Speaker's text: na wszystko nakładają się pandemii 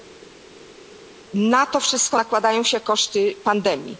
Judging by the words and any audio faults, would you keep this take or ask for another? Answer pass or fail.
fail